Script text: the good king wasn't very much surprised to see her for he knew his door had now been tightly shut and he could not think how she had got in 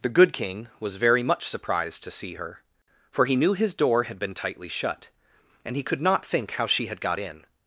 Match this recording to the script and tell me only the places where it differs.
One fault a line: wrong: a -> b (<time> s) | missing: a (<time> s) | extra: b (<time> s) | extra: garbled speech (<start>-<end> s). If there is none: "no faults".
wrong: wasn't -> was (0.8 s)
missing: now (4.2 s)